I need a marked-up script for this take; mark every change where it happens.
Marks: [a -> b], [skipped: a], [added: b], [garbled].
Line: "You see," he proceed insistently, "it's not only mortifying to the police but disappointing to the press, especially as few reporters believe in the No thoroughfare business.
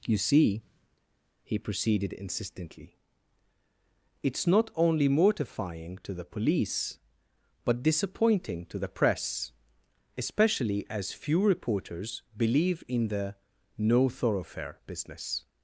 "You see," he [proceed -> proceeded] insistently, "it's not only mortifying to the police but disappointing to the press, especially as few reporters believe in the No thoroughfare business.